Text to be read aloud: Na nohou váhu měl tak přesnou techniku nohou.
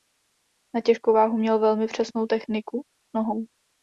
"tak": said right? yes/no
no